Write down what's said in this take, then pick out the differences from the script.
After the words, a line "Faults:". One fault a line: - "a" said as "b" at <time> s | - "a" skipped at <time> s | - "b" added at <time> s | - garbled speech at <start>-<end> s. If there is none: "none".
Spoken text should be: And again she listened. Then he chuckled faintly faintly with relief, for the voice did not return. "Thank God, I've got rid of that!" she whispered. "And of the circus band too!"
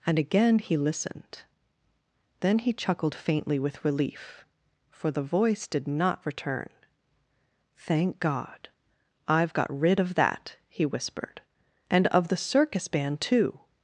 And again he listened. Then he chuckled faintly with relief, for the voice did not return. "Thank God, I've got rid of that!" he whispered. "And of the circus band too!"
Faults:
- "she" said as "he" at 0.6 s
- "faintly" skipped at 3.6 s
- "she" said as "he" at 10.7 s